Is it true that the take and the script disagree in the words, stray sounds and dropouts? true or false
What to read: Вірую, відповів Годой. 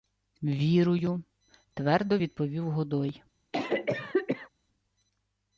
true